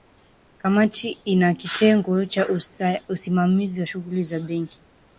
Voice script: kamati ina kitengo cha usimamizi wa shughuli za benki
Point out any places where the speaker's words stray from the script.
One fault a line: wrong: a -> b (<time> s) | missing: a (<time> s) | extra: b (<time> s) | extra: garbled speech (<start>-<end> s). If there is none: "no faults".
no faults